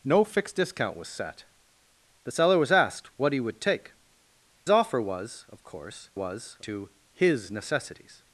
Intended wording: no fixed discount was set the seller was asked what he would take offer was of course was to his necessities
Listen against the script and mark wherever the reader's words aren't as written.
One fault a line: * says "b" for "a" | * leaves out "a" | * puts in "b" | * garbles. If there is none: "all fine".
all fine